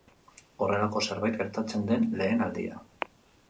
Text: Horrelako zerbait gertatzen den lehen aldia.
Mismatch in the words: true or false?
false